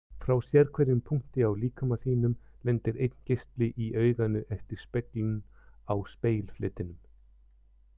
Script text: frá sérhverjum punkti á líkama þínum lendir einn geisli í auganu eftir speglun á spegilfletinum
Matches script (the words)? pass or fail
pass